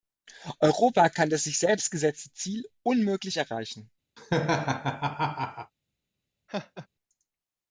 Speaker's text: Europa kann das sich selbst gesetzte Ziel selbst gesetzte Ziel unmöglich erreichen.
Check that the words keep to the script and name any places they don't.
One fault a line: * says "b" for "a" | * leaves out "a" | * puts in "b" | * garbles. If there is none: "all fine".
* leaves out "selbst gesetzte Ziel"